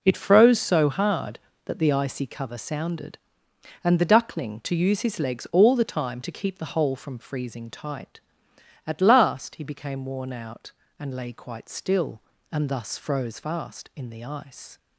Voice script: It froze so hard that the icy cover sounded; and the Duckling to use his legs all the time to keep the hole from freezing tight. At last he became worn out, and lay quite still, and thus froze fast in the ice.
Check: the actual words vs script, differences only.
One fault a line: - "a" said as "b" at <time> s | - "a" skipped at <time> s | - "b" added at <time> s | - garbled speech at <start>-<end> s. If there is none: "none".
none